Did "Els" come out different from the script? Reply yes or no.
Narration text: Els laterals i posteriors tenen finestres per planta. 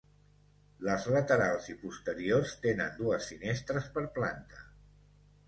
yes